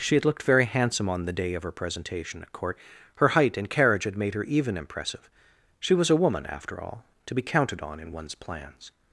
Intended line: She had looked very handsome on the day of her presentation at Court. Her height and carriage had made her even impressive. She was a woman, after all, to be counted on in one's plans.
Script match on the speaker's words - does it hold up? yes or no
yes